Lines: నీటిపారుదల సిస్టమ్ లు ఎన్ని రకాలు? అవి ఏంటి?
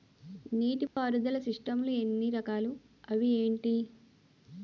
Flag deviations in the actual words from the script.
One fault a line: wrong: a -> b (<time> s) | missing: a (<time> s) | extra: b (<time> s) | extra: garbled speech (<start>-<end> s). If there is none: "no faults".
no faults